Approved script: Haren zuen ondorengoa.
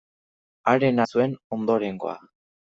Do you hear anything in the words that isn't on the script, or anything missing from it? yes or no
no